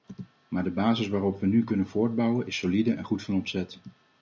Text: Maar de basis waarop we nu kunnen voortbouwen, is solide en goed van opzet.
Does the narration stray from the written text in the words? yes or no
no